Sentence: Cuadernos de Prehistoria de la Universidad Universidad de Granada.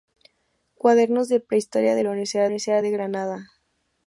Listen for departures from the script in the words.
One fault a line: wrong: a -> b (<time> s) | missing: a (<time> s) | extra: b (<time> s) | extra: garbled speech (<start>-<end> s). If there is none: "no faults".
no faults